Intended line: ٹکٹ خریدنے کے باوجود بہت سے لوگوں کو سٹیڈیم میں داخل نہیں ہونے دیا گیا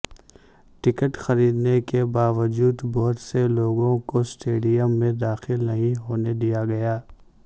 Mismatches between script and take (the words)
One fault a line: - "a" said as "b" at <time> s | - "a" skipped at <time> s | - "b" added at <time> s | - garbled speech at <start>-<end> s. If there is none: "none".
none